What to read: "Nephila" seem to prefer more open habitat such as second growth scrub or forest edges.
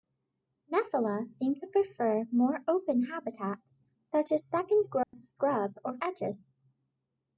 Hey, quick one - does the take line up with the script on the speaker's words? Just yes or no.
no